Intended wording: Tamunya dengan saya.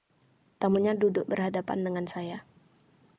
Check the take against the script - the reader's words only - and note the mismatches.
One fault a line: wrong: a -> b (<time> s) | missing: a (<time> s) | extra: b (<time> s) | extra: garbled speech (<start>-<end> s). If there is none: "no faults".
extra: duduk berhadapan (1.0 s)